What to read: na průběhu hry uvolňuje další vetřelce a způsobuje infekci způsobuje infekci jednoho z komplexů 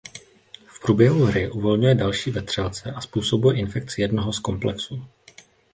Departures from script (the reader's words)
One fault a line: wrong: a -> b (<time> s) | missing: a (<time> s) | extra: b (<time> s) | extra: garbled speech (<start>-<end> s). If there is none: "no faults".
wrong: na -> v (0.7 s)
missing: způsobuje infekci (4.0 s)